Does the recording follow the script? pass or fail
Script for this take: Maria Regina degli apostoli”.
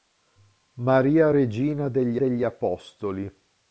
fail